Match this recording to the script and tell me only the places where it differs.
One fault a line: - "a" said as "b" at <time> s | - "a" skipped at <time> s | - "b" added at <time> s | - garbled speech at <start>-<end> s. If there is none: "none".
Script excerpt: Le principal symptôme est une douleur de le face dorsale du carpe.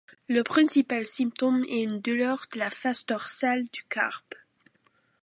- "le" said as "la" at 2.6 s